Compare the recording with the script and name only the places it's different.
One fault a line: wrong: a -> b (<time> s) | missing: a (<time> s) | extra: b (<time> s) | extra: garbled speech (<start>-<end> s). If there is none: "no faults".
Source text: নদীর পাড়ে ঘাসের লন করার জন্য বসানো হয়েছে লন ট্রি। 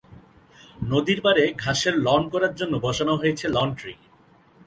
no faults